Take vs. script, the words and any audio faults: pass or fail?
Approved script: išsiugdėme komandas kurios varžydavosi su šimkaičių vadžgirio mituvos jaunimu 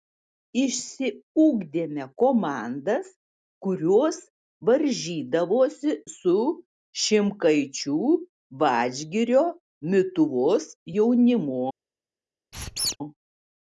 fail